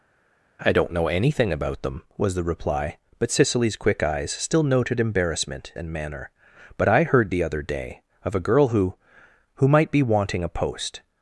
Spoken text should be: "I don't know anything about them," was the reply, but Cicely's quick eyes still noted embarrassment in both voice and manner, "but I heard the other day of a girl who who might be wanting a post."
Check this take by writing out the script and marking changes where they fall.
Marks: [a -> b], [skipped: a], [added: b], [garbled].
"I don't know anything about them," was the reply, but Cicely's quick eyes still noted embarrassment [skipped: in both voice] and manner, "but I heard the other day of a girl who who might be wanting a post."